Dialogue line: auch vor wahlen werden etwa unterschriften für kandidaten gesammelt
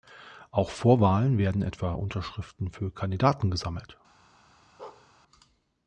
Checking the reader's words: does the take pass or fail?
pass